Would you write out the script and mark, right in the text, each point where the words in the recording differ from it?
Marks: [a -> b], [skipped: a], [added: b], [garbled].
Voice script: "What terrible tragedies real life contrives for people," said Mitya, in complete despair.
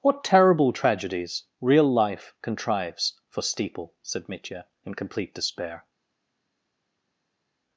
"What terrible tragedies real life contrives for [people," -> steeple] said Mitya, in complete despair.